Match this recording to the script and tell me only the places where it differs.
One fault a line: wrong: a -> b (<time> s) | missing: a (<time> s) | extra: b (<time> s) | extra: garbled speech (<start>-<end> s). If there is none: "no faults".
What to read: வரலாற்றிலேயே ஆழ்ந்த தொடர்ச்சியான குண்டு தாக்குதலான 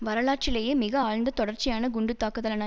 extra: மிக (0.7 s)